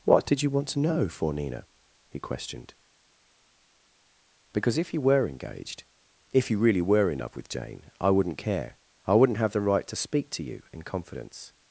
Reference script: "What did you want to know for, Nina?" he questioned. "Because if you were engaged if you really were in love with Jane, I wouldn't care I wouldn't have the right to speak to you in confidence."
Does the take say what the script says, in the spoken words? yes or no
yes